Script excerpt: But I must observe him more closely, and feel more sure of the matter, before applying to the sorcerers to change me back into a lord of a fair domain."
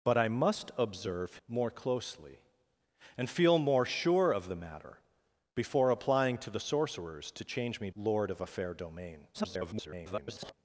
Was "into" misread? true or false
true